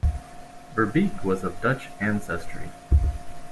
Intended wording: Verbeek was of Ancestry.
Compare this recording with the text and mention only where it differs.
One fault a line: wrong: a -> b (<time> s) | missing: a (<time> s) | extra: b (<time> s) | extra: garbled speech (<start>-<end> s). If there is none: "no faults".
extra: Dutch (1.6 s)